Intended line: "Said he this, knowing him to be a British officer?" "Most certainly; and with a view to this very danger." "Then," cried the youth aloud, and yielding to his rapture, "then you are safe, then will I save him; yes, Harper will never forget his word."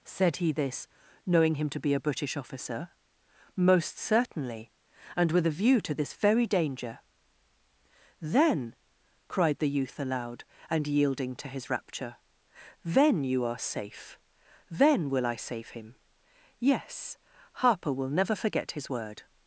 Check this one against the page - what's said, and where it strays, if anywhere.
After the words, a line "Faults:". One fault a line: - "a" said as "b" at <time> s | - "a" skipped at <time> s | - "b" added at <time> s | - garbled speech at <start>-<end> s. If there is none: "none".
"Said he this, knowing him to be a British officer?" "Most certainly; and with a view to this very danger." "Then," cried the youth aloud, and yielding to his rapture, "then you are safe, then will I save him; yes, Harper will never forget his word."
Faults:
none